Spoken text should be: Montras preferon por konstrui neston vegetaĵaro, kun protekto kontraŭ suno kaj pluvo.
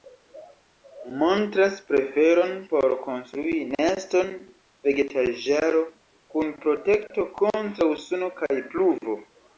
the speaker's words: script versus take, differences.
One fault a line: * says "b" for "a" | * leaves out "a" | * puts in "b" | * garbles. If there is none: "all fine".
all fine